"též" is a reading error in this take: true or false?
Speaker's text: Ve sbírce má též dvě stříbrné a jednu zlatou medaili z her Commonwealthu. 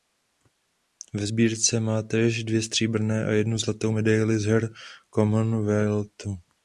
false